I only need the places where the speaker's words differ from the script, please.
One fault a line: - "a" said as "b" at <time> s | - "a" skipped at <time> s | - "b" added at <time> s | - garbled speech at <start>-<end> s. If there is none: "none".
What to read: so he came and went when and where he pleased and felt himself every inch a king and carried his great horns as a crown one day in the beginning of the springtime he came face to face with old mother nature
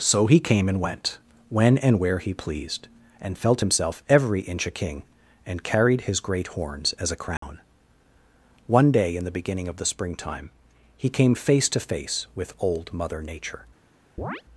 none